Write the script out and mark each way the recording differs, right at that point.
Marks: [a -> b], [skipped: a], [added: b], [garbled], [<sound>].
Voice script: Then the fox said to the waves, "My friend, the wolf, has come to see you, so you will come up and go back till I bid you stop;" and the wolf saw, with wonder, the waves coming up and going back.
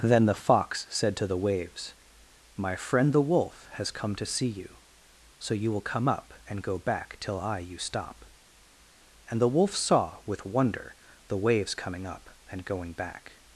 Then the fox said to the waves, "My friend, the wolf, has come to see you, so you will come up and go back till I [skipped: bid] you stop;" and the wolf saw, with wonder, the waves coming up and going back.